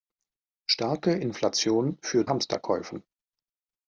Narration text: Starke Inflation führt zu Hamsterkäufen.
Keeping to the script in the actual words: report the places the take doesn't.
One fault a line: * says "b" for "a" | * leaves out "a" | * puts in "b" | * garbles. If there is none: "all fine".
* leaves out "zu"